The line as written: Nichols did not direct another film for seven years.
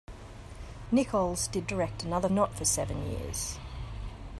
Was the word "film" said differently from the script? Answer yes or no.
yes